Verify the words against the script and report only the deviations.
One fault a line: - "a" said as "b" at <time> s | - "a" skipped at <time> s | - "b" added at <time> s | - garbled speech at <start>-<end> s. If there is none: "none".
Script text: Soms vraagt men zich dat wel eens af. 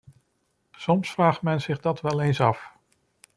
none